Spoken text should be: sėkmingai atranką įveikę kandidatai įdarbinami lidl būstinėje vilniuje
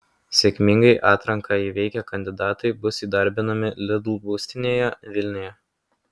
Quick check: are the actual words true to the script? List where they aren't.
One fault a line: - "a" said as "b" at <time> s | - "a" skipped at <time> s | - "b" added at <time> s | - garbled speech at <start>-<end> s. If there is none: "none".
- "bus" added at 2.9 s